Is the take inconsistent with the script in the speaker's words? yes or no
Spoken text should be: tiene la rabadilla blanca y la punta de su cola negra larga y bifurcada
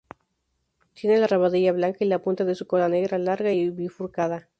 no